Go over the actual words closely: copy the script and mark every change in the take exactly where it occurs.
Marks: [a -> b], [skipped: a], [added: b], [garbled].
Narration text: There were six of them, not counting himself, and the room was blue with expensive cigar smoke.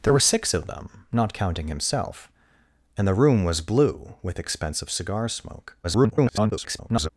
There were six of them, not counting himself, and the room was blue with expensive cigar smoke. [garbled]